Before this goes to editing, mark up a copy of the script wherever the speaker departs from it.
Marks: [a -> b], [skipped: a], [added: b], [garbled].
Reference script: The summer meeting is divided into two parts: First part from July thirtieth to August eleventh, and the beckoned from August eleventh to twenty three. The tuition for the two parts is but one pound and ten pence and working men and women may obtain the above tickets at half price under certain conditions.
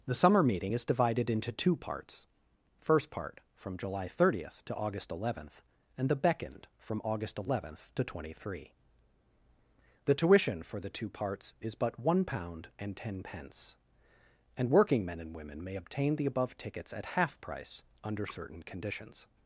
The summer meeting is divided into two parts: First part from July thirtieth to August eleventh, and the beckoned from August eleventh to twenty three. The tuition for the two parts is but one pound and ten pence and working men and women may obtain the above tickets at half price under certain conditions.